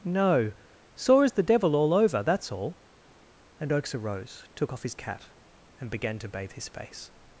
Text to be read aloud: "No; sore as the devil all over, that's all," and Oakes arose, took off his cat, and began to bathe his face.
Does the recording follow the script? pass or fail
pass